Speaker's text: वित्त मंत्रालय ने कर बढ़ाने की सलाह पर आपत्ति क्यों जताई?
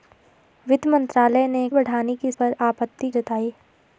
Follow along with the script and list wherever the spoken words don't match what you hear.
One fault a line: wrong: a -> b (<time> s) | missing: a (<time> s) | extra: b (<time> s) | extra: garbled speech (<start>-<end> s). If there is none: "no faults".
missing: कर (1.7 s)
missing: सलाह (2.3 s)
missing: क्यों (3.1 s)